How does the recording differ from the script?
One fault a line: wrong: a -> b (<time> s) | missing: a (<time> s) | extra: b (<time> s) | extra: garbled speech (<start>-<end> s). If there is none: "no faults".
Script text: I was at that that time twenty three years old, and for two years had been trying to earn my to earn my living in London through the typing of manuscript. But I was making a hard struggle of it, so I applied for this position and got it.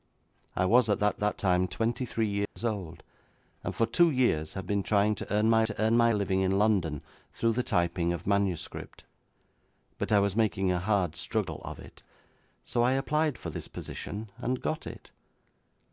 no faults